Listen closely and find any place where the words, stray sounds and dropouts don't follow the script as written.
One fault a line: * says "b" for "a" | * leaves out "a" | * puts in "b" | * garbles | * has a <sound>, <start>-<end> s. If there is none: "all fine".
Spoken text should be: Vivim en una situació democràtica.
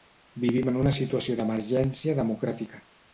* puts in "d'emergència"